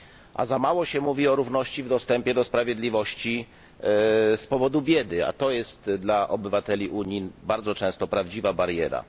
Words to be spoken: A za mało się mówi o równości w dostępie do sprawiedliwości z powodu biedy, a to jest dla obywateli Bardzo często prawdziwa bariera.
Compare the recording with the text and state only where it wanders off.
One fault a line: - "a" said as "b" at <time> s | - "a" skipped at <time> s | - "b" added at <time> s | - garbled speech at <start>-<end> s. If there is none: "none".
- "Unii" added at 6.9 s